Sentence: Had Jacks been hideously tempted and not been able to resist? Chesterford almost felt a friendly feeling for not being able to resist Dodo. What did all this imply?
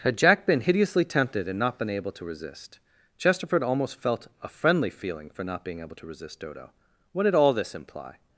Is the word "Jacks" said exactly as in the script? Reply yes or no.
no